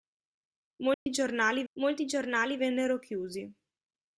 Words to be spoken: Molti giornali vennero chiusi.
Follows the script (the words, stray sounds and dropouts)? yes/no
no